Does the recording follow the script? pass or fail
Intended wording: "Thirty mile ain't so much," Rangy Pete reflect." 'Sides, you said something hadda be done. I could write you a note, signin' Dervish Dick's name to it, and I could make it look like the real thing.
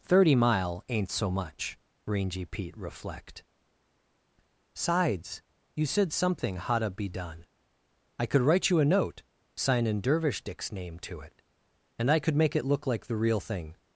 pass